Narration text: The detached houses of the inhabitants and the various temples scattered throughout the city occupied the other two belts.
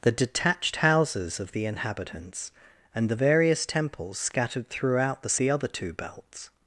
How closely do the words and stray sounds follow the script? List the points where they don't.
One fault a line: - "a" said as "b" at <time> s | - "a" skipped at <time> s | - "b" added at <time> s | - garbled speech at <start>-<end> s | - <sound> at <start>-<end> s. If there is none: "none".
- "city occupied" skipped at 5.4 s